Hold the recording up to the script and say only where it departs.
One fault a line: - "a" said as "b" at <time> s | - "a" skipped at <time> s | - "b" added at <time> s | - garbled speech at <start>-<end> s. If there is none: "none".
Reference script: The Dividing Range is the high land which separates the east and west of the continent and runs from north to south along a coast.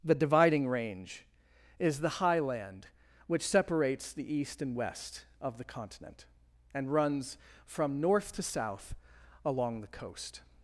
- "a" said as "the" at 9.8 s